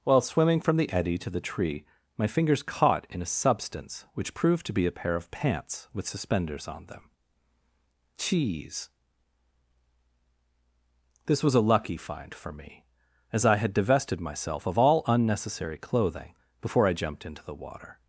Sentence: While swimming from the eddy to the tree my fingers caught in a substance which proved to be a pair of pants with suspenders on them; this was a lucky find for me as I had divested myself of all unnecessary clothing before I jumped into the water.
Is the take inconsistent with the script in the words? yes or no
yes